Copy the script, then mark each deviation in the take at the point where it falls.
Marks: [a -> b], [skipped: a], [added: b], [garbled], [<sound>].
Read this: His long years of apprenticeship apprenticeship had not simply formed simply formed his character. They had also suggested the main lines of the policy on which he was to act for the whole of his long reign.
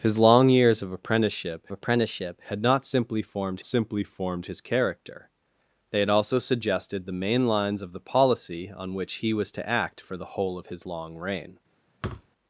His long years of apprenticeship apprenticeship had not simply formed simply formed his character. They had also suggested the main lines of the policy on which he was to act for the whole of his long reign. [thud]